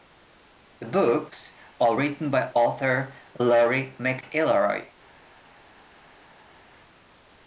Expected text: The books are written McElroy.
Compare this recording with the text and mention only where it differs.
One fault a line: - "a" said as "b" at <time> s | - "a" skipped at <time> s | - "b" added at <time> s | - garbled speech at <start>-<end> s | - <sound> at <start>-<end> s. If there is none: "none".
- "by author Laurie" added at 2.3 s